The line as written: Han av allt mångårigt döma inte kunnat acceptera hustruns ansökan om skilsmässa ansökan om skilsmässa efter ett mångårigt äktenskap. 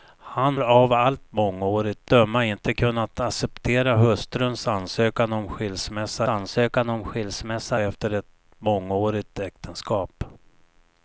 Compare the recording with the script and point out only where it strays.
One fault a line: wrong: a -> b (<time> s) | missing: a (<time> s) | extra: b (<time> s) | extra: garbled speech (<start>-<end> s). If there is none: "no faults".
no faults